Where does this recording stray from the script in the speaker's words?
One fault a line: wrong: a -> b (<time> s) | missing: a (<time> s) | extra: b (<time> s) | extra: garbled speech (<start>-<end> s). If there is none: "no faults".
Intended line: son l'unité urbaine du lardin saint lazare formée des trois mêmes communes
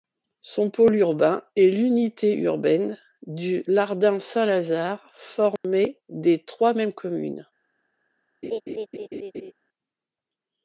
extra: pôle urbain est (0.7 s)